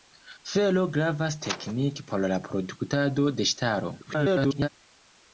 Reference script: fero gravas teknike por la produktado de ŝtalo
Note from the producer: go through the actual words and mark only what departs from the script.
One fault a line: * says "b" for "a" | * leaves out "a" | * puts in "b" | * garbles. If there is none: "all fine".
* garbles